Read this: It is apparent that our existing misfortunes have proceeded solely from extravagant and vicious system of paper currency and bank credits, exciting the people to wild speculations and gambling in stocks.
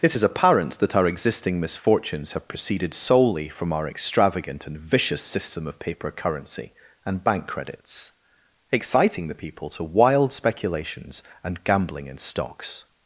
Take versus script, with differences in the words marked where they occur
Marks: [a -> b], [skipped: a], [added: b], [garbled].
It is apparent that our existing misfortunes have proceeded solely from [added: our] extravagant and vicious system of paper currency and bank credits, exciting the people to wild speculations and gambling in stocks.